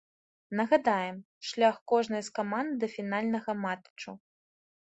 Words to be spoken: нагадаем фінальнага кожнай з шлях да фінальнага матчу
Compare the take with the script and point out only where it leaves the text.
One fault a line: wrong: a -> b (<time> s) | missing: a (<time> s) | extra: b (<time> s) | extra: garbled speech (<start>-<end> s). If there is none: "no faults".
wrong: фінальнага -> шлях (1.5 s)
wrong: шлях -> каманд (2.4 s)